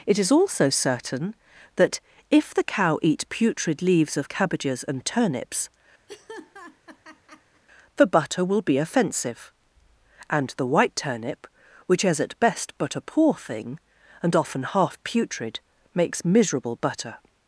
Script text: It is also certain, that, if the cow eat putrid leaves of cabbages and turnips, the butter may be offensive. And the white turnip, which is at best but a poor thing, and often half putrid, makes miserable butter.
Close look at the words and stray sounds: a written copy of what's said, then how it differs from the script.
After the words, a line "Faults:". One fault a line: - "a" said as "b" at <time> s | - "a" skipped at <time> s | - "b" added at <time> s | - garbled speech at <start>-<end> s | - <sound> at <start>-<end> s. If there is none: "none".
It is also certain, that, if the cow eat putrid leaves of cabbages and turnips, the butter will be offensive. And the white turnip, which is at best but a poor thing, and often half putrid, makes miserable butter.
Faults:
- laugh at 6.1-7.6 s
- "may" said as "will" at 8.4 s